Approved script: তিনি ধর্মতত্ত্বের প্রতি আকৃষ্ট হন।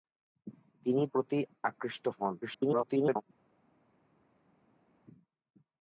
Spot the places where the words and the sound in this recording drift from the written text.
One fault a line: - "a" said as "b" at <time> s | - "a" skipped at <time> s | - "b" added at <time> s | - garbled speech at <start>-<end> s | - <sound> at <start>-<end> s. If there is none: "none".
- "ধর্মতত্ত্বের" skipped at 1.0 s
- garbled speech at 2.4-3.2 s